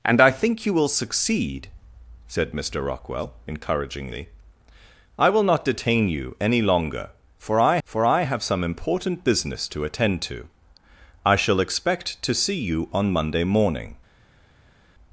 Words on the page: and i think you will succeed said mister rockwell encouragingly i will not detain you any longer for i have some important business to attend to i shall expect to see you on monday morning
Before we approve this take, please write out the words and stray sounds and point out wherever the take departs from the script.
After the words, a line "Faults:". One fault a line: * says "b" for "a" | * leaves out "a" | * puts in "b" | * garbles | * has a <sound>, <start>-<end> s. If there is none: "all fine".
and i think you will succeed said mister rockwell encouragingly i will not detain you any longer for i for i have some important business to attend to i shall expect to see you on monday morning
Faults:
* puts in "for i"